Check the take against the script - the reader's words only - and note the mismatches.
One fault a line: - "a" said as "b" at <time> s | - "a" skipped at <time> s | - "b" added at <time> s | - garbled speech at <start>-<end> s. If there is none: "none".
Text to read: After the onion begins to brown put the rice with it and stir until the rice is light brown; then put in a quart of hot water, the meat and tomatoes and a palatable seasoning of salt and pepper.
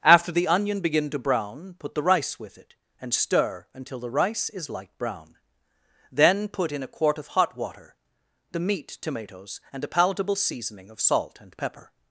- "begins" said as "begin" at 0.8 s
- "and" skipped at 9.0 s